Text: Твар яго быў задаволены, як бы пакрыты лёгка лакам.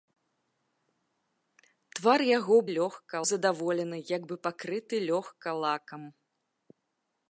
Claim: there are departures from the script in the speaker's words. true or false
true